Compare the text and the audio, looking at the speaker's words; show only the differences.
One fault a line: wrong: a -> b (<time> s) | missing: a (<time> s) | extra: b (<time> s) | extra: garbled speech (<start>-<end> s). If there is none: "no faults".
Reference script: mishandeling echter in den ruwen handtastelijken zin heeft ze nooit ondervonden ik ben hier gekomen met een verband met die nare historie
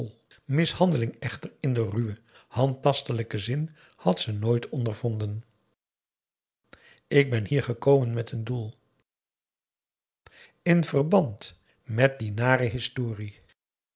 wrong: heeft -> had (4.0 s)
extra: doel in (8.4 s)